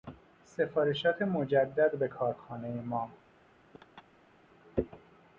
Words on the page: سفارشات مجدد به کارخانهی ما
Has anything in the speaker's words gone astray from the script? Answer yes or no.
no